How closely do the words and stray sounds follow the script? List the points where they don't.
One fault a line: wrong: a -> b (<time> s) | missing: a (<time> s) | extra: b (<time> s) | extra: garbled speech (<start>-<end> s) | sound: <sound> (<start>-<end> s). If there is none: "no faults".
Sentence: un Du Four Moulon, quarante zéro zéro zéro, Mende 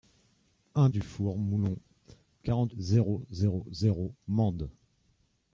no faults